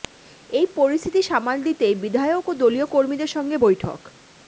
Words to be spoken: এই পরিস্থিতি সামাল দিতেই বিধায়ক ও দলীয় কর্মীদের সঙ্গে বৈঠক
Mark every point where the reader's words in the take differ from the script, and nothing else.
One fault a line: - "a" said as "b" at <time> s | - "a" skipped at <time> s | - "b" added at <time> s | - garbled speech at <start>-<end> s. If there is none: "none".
none